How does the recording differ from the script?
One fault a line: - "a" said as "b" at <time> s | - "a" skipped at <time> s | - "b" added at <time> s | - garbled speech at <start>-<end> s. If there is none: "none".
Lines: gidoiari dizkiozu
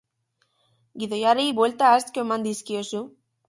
- "buelta asko eman" added at 1.6 s